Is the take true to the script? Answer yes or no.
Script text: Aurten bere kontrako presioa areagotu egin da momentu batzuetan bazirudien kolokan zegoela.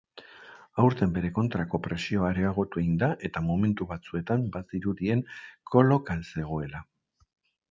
no